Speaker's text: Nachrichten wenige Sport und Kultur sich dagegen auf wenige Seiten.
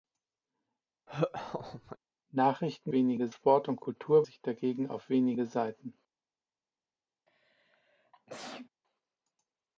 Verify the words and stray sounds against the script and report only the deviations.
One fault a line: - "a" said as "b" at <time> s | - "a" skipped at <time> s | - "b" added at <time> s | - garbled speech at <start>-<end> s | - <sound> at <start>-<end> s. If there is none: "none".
- laugh at 1.1-2.0 s
- sneeze at 7.3-8.7 s